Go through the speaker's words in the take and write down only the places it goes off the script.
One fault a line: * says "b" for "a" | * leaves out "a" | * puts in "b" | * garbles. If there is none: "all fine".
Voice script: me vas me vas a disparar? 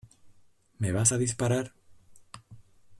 * leaves out "me vas"